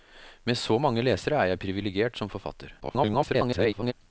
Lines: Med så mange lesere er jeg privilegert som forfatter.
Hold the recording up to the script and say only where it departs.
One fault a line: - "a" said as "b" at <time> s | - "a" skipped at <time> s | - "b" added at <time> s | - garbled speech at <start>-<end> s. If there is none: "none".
- garbled speech at 2.8-3.9 s